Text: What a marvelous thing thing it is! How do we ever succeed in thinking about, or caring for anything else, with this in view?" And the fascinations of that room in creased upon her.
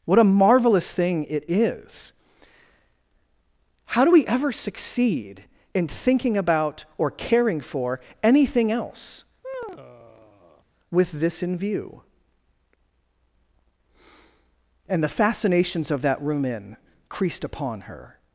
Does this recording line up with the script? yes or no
no